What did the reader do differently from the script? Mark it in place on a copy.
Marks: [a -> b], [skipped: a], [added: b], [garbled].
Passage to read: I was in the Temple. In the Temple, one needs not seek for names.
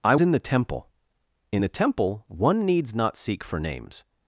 I [skipped: was] in the Temple. In the Temple, one needs not seek for names.